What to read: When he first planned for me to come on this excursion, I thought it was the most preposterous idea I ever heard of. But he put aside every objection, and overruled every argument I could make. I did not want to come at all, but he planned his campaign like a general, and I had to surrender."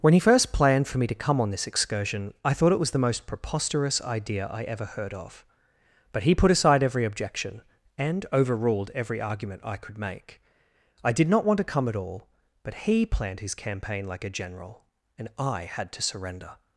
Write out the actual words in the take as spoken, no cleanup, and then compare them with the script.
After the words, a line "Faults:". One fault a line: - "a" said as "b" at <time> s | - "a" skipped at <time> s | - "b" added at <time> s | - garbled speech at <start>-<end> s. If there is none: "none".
When he first planned for me to come on this excursion, I thought it was the most preposterous idea I ever heard of. But he put aside every objection, and overruled every argument I could make. I did not want to come at all, but he planned his campaign like a general, and I had to surrender."
Faults:
none